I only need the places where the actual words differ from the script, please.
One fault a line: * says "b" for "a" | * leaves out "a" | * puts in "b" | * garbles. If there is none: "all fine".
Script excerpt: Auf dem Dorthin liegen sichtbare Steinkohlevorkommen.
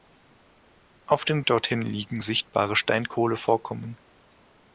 all fine